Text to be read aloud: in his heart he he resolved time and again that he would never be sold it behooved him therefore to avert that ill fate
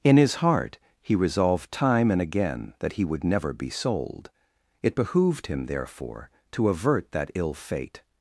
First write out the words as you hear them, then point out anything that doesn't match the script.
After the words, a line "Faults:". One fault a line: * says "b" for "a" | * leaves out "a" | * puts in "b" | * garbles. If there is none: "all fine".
in his heart he resolved time and again that he would never be sold it behooved him therefore to avert that ill fate
Faults:
* leaves out "he"